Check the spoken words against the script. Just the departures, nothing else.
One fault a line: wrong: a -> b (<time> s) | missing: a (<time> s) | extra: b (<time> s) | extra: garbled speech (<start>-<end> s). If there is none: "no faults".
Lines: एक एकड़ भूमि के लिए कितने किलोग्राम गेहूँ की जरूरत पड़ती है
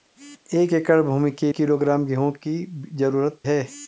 missing: लिए कितने (1.5 s)
missing: पड़ती (3.4 s)